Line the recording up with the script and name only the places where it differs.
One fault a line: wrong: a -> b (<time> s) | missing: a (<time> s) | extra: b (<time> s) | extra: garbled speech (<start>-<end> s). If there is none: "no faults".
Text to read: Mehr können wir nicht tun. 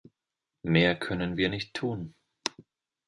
no faults